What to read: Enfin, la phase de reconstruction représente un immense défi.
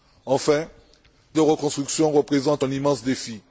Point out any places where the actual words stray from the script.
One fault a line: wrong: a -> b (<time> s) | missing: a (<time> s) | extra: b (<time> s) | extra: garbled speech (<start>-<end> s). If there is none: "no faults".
missing: la phase (0.7 s)